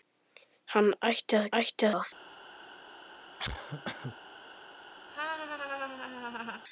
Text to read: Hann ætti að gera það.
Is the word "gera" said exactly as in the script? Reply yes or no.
no